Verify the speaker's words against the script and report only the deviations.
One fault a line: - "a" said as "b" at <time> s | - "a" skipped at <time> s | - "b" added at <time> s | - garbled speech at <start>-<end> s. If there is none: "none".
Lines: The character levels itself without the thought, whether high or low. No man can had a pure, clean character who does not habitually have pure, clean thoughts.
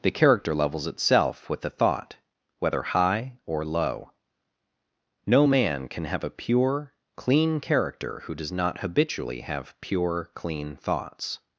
- "without" said as "with" at 1.5 s
- "had" said as "have" at 6.1 s